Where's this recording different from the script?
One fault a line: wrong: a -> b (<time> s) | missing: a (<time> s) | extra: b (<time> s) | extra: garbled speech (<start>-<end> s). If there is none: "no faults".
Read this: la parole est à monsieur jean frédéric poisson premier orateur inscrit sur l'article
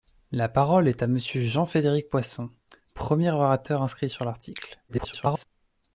extra: garbled speech (4.9-5.4 s)